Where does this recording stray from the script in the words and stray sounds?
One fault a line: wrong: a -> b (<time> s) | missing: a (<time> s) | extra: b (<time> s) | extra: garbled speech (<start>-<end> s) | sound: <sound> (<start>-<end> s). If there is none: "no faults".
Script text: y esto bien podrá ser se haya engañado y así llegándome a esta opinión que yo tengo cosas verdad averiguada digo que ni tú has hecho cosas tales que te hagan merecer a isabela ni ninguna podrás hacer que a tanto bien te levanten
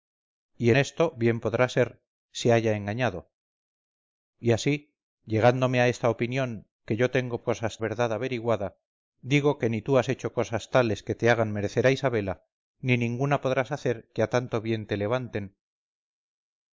no faults